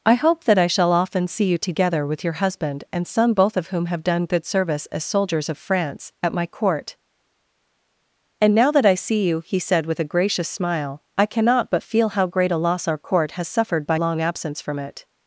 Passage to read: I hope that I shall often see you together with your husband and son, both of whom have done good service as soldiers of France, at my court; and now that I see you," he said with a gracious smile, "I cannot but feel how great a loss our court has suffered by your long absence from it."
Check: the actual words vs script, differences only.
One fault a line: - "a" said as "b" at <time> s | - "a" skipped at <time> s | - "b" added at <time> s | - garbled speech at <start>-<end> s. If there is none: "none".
- "your" skipped at 14.0 s